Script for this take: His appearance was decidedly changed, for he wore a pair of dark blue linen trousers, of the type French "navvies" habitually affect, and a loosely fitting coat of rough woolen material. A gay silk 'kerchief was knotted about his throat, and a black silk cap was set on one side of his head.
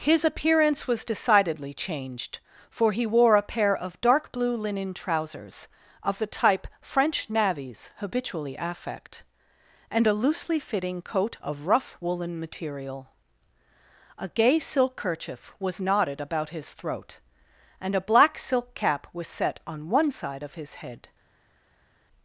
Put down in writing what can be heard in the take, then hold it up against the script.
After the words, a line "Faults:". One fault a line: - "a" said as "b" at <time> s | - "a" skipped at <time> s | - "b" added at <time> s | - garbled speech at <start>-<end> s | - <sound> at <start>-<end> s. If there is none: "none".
His appearance was decidedly changed, for he wore a pair of dark blue linen trousers, of the type French "navvies" habitually affect, and a loosely fitting coat of rough woolen material. A gay silk 'kerchief was knotted about his throat, and a black silk cap was set on one side of his head.
Faults:
none